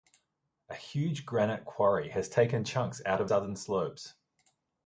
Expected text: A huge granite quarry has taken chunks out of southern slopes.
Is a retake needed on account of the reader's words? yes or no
no